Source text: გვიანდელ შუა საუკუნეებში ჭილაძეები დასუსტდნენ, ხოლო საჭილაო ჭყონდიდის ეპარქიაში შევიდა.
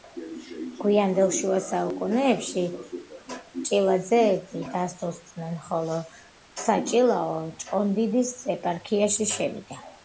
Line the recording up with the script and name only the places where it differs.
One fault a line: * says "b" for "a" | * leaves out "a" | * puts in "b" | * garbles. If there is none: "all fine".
all fine